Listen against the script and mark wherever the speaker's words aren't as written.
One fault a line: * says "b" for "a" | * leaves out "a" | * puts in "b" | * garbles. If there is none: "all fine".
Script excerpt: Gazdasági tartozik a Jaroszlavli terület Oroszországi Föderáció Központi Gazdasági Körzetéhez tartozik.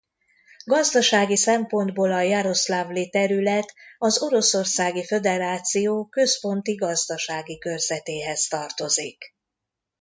* says "szempontból" for "tartozik"
* puts in "az"